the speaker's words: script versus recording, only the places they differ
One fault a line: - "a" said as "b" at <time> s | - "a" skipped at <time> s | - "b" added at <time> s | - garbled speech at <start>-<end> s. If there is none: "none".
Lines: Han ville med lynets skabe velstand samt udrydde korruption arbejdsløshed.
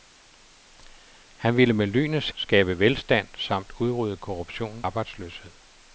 none